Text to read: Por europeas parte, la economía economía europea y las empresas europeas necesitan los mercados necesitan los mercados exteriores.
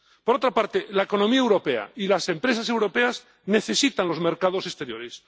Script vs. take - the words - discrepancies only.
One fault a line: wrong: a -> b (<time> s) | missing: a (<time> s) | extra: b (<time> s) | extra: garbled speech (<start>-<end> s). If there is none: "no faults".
wrong: europeas -> otra (0.3 s)
missing: economía (1.4 s)
missing: necesitan los mercados (4.7 s)